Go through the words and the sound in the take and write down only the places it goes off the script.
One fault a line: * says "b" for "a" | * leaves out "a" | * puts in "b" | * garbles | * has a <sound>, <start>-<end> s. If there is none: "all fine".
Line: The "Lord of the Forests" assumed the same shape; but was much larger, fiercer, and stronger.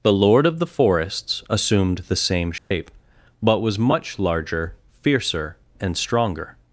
* has a dropout, 2.6-2.7 s